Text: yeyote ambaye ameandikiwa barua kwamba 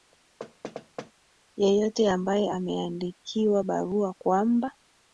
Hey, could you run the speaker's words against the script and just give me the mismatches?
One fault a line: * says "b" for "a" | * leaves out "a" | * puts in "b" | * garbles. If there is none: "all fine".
all fine